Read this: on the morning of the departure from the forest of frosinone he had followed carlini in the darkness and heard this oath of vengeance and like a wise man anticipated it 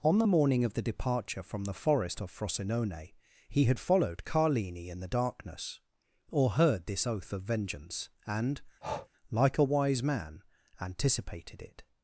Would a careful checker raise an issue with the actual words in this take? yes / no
yes